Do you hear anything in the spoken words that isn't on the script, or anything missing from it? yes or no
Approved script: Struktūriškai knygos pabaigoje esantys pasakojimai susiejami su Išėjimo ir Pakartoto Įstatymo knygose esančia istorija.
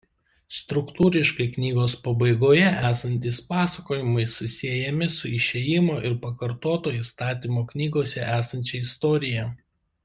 no